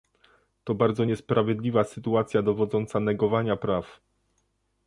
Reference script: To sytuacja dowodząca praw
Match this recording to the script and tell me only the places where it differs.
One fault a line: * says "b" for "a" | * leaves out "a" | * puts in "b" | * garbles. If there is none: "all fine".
* puts in "bardzo niesprawiedliwa"
* puts in "negowania"